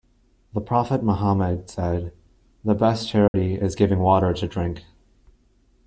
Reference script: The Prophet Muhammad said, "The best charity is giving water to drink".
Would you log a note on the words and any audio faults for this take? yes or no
yes